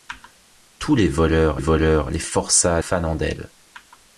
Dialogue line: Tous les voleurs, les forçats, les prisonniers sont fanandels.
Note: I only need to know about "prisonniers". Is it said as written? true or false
false